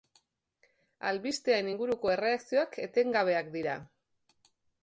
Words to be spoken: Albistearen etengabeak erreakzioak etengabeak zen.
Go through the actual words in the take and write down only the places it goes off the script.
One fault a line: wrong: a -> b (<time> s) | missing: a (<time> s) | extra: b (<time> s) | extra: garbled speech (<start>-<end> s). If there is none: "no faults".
wrong: etengabeak -> inguruko (1.7 s)
wrong: zen -> dira (3.6 s)